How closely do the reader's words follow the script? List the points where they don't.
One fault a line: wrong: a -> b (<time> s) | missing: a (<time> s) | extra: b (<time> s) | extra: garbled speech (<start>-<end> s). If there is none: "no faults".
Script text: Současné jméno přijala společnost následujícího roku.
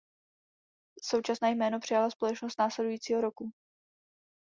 no faults